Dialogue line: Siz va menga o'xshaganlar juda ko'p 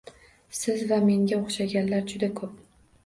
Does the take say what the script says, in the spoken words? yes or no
yes